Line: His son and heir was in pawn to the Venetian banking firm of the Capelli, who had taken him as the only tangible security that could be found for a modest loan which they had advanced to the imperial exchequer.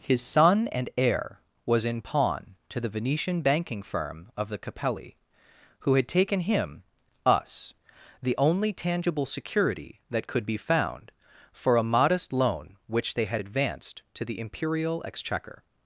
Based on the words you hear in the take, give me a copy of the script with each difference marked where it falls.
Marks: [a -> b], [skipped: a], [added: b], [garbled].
His son and heir was in pawn to the Venetian banking firm of the Capelli, who had taken him [as -> us] the only tangible security that could be found for a modest loan which they had advanced to the imperial exchequer.